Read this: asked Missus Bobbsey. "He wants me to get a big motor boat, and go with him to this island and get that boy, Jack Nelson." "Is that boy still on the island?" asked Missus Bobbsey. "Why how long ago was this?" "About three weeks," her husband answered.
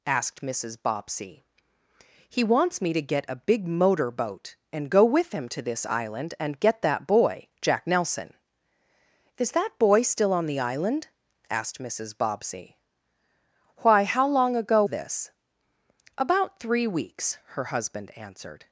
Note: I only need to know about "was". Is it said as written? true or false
false